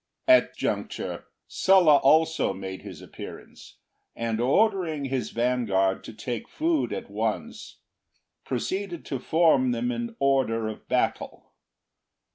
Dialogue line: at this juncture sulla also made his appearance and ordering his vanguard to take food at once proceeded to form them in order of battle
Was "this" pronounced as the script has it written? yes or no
no